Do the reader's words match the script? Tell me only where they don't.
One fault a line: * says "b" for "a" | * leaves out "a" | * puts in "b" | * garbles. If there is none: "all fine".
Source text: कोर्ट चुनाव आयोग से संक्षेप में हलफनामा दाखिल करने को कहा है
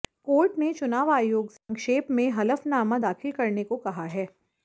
* puts in "ने"